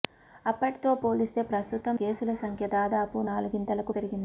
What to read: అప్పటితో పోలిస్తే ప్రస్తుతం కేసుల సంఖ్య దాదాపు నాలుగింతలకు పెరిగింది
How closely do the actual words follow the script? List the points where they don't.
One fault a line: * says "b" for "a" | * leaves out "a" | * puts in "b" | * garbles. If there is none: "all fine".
all fine